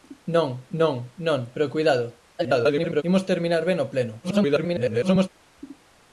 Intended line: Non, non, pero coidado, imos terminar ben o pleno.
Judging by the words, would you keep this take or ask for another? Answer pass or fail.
fail